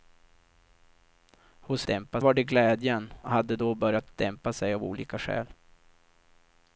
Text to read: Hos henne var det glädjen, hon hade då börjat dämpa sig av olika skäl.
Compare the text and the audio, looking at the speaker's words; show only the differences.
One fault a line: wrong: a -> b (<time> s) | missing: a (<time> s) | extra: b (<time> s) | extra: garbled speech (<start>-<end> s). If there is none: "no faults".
wrong: henne -> dämpa (1.9 s)
missing: hon (3.1 s)